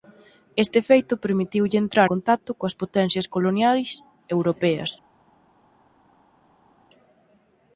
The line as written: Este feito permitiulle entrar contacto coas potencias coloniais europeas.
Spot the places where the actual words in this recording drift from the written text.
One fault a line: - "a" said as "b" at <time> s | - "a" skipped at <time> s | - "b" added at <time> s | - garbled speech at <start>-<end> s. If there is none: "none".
none